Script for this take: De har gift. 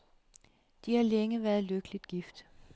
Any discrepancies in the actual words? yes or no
yes